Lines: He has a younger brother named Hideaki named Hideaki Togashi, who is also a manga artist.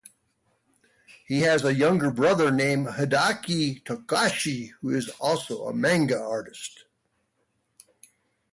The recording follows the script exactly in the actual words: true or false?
false